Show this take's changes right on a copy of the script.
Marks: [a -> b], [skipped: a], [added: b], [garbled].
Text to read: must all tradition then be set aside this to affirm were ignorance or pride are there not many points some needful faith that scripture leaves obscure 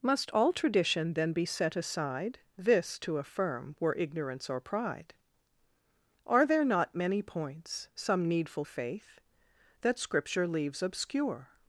must all tradition then be set aside this to affirm were ignorance or pride are there not many points some needful faith that scripture leaves obscure